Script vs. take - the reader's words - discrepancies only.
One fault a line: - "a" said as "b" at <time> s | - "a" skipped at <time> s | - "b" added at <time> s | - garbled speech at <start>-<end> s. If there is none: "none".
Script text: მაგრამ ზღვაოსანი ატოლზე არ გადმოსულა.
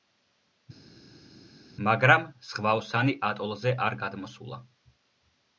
none